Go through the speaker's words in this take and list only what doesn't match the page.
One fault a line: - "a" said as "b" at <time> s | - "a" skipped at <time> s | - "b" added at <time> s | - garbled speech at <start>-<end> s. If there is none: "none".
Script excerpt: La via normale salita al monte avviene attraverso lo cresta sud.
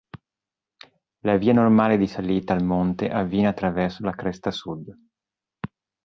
- "di" added at 1.9 s
- "lo" said as "la" at 4.0 s